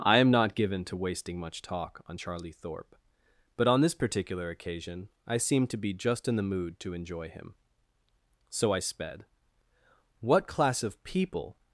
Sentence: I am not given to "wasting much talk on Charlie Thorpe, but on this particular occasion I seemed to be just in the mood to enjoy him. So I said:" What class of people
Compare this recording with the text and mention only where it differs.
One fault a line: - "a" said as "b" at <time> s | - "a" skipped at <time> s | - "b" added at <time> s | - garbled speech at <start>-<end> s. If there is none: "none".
- "said" said as "sped" at 8.8 s